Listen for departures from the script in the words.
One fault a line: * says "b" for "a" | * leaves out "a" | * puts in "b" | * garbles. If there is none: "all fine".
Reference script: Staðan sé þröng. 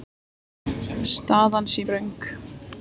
all fine